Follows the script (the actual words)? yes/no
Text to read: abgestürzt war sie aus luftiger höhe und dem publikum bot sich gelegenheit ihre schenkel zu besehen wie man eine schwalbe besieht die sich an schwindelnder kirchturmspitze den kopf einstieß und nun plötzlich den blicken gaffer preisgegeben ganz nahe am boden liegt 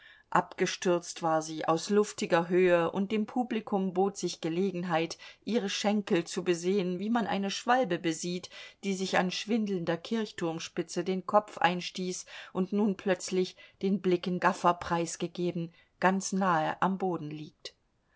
yes